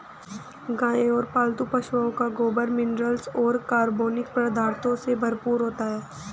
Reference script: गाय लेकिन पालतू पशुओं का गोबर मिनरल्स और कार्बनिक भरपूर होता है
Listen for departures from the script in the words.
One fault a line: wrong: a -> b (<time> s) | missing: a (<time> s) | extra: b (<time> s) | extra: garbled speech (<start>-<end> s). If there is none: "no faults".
wrong: लेकिन -> और (1.1 s)
extra: पदार्थों से (4.3 s)